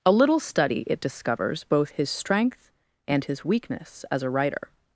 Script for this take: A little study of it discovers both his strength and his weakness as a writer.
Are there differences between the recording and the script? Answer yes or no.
yes